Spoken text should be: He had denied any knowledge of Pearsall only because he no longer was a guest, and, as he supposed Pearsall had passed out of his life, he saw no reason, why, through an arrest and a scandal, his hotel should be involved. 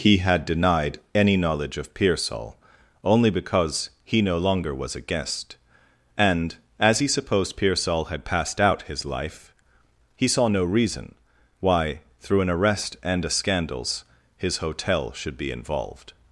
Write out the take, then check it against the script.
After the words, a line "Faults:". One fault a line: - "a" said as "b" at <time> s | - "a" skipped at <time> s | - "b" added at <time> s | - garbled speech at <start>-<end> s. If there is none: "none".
He had denied any knowledge of Pearsall only because he no longer was a guest, and, as he supposed Pearsall had passed out his life, he saw no reason, why, through an arrest and a scandals, his hotel should be involved.
Faults:
- "of" skipped at 8.8 s
- "scandal" said as "scandals" at 13.3 s